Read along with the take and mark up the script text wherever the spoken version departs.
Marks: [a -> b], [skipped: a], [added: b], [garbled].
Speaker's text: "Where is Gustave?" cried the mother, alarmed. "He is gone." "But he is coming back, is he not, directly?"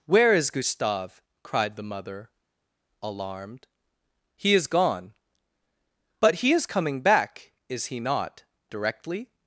"Where is Gustave?" cried the mother, alarmed. "He is gone." "But he is coming back, is he not, directly?"